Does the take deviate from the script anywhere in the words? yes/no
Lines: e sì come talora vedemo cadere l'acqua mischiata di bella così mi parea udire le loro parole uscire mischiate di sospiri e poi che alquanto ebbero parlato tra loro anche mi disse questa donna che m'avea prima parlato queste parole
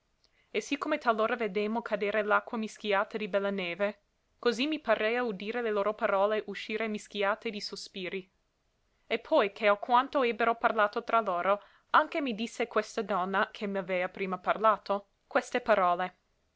yes